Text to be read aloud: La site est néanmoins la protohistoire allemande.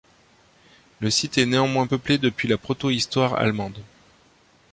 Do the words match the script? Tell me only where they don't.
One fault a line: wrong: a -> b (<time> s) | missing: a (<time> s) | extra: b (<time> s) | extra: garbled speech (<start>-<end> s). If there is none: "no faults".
wrong: La -> Le (1.0 s)
extra: peuplé depuis (1.8 s)